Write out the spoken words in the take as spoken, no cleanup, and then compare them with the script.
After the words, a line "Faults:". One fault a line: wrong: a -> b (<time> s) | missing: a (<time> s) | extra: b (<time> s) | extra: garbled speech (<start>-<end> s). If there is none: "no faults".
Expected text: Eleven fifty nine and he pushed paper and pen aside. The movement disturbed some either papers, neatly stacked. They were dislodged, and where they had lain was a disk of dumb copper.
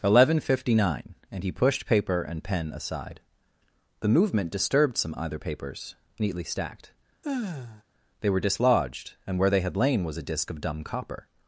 Eleven fifty nine and he pushed paper and pen aside. The movement disturbed some either papers, neatly stacked. They were dislodged, and where they had lain was a disk of dumb copper.
Faults:
no faults